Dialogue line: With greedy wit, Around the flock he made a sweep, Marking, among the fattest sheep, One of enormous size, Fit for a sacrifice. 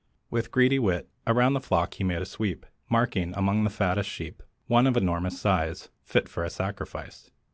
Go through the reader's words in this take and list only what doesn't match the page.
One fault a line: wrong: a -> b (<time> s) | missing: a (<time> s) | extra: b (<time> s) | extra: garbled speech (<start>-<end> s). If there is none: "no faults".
no faults